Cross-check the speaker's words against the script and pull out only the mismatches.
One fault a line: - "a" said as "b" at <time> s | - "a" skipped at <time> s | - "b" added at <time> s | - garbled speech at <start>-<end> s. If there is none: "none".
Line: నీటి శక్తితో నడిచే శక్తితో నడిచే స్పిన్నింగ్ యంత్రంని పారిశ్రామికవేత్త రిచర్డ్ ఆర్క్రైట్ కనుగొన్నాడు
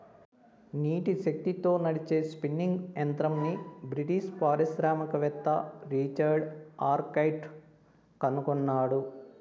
- "శక్తితో నడిచే" skipped at 2.2 s
- "బ్రిటిష్" added at 3.9 s